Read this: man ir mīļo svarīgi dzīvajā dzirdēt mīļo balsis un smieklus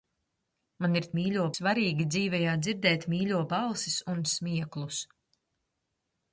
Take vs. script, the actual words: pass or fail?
pass